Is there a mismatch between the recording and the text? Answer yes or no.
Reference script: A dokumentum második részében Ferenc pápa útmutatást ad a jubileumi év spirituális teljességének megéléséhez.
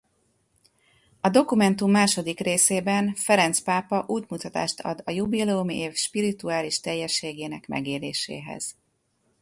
no